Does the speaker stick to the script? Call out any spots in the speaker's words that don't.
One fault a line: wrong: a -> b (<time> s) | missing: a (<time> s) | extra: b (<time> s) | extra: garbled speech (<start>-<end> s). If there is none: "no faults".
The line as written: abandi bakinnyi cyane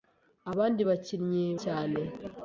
no faults